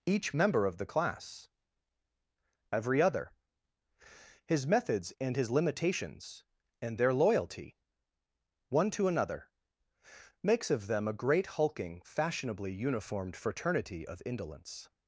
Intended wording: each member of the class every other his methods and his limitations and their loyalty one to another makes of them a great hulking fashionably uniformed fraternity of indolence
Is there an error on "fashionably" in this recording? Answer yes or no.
no